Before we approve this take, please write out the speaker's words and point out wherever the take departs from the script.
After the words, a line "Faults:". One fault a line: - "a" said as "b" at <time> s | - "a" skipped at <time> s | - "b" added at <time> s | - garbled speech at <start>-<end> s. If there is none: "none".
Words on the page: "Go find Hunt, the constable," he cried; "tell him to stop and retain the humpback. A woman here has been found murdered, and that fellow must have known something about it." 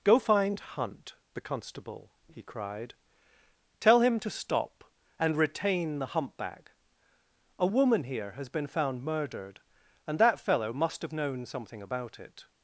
"Go find Hunt, the constable," he cried; "tell him to stop and retain the humpback. A woman here has been found murdered, and that fellow must have known something about it."
Faults:
none